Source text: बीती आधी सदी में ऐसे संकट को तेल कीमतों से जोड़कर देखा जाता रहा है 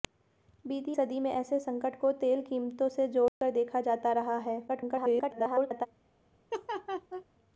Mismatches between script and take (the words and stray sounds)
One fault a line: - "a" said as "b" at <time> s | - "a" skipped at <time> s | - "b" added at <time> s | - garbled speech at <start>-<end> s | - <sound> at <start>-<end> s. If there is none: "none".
- "आधी" skipped at 0.9 s
- dropout at 3.3-3.4 s
- garbled speech at 4.7-5.9 s
- laugh at 6.5-7.2 s